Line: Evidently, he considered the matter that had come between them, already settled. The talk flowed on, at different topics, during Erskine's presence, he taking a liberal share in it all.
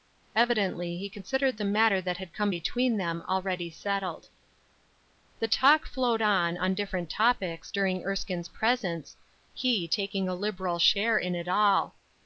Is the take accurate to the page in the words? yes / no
no